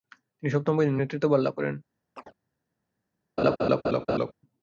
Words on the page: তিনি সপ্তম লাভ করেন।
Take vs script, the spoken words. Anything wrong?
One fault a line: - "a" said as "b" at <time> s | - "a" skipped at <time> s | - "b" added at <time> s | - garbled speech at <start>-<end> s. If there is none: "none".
- "বাহিনীর নেতৃত্বভার" added at 0.8 s